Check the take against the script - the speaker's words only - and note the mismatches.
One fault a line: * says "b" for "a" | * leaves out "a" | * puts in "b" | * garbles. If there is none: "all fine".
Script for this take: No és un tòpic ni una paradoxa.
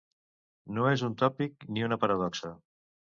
all fine